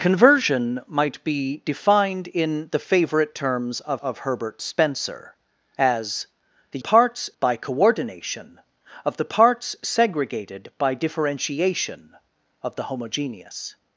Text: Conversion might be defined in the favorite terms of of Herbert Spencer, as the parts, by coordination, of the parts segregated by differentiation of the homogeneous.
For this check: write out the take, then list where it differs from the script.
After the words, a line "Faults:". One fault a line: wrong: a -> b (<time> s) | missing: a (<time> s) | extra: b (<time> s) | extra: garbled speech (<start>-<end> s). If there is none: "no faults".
Conversion might be defined in the favorite terms of of Herbert Spencer, as the parts, by coordination, of the parts segregated by differentiation of the homogeneous.
Faults:
no faults